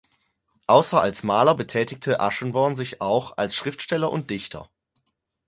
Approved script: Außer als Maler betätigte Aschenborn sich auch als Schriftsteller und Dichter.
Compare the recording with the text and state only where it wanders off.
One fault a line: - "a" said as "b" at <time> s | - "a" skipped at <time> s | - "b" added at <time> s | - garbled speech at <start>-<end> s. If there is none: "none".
none